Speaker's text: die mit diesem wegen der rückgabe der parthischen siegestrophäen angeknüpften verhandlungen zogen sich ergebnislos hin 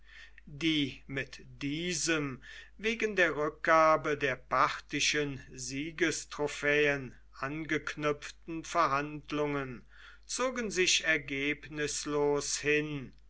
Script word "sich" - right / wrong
right